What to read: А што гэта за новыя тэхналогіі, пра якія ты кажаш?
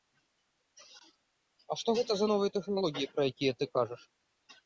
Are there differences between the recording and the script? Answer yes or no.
no